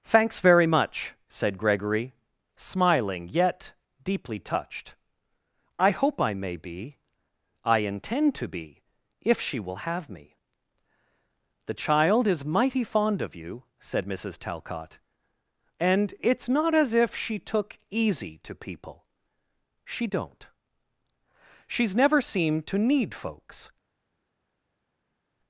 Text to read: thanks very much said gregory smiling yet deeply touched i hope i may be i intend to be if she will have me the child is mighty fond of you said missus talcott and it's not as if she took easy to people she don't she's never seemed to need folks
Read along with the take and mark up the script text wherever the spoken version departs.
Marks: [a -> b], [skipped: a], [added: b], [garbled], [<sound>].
thanks very much said gregory smiling yet deeply touched i hope i may be i intend to be if she will have me the child is mighty fond of you said missus talcott and it's not as if she took easy to people she don't she's never seemed to need folks